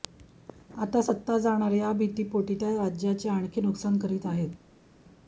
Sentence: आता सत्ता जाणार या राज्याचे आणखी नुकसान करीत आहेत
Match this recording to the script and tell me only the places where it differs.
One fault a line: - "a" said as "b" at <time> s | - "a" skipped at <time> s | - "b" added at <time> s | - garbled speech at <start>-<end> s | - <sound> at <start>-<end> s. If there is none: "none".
- "भीतीपोटी त्या" added at 1.9 s